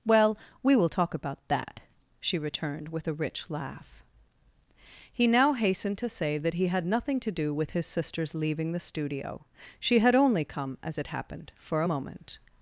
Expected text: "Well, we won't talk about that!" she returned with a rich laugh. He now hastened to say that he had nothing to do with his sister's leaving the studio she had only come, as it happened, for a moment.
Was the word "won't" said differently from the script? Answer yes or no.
yes